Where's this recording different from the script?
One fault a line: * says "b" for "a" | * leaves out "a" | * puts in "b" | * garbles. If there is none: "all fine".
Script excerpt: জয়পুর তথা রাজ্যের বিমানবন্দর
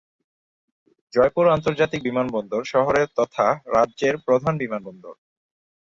* puts in "আন্তর্জাতিক বিমানবন্দর শহরের"
* puts in "প্রধান"